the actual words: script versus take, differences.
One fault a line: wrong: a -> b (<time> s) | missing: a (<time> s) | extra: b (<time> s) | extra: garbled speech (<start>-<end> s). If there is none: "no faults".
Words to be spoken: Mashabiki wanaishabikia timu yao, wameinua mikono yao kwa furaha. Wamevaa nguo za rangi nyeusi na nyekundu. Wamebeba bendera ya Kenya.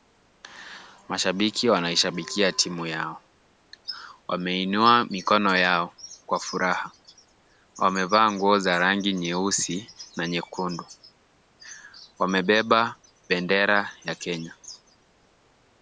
no faults